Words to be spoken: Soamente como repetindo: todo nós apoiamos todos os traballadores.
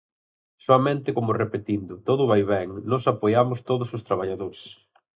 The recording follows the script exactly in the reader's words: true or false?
false